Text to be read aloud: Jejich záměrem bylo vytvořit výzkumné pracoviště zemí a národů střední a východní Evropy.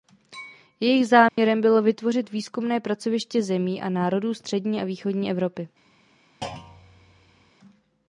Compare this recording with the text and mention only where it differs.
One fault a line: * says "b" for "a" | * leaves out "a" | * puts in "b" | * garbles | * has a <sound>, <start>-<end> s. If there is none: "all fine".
* has a dropout, 1.3-1.4 s
* has a thud, 6.4-7.5 s